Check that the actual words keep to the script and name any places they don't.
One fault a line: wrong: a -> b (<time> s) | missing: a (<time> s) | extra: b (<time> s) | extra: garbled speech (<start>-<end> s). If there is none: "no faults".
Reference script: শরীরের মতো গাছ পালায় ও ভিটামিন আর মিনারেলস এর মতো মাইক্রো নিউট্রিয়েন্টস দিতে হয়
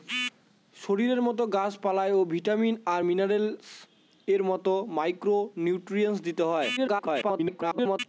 extra: garbled speech (6.8-8.0 s)